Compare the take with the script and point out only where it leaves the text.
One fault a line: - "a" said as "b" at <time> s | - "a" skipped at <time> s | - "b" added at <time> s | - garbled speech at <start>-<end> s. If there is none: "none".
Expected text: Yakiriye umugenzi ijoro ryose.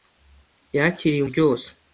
- "umugenzi ijoro" skipped at 1.2 s